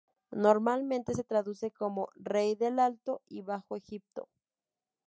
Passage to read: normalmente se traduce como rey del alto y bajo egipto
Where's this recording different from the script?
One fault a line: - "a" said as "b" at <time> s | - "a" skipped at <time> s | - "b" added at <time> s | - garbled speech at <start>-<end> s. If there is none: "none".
none